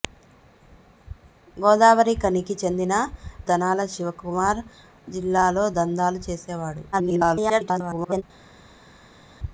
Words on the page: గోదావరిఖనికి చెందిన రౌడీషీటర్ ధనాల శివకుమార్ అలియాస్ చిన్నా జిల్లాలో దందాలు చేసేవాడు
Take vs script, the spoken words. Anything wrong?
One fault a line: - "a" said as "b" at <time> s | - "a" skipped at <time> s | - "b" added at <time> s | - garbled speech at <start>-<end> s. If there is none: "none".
- "రౌడీషీటర్" skipped at 2.9 s
- "అలియాస్ చిన్నా" skipped at 4.6 s
- garbled speech at 6.9-8.2 s